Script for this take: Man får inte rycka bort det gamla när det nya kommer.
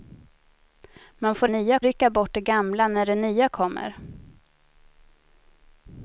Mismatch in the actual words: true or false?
true